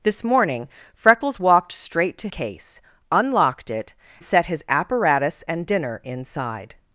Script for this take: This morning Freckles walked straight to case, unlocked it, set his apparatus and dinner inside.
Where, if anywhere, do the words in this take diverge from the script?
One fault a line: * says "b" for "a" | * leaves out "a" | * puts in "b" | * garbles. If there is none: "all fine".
all fine